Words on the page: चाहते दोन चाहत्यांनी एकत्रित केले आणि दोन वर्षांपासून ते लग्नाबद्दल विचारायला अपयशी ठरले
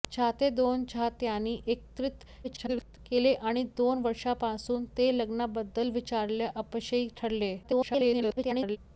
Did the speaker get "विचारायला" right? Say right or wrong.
right